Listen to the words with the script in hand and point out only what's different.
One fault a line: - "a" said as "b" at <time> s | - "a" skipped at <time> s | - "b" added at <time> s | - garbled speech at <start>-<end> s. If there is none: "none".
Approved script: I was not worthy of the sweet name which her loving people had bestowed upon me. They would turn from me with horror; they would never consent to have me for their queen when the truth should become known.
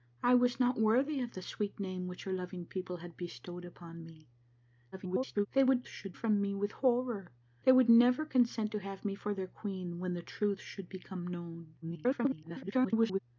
- garbled speech at 4.9-5.5 s
- "turn" said as "should" at 5.8 s
- garbled speech at 11.8-13.2 s